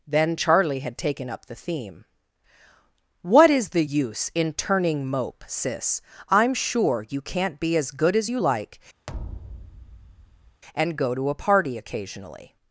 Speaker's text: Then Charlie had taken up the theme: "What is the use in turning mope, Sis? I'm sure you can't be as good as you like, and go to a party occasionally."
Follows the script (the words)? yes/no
yes